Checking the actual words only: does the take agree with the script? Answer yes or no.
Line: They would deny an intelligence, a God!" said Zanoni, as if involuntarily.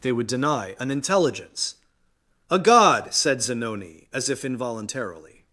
yes